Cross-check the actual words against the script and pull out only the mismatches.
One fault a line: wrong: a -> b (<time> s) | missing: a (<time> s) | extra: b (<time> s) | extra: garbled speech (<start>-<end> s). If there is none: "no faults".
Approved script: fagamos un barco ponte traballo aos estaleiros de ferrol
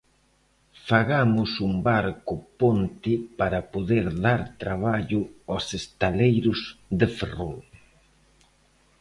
extra: para poder dar (3.4 s)